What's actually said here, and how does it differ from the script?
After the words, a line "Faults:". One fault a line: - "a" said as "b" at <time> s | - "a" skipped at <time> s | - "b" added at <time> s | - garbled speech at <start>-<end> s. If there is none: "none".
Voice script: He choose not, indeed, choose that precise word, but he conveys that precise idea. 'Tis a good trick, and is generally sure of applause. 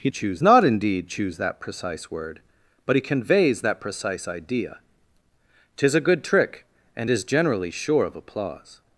He choose not, indeed, choose that precise word, but he conveys that precise idea. 'Tis a good trick, and is generally sure of applause.
Faults:
none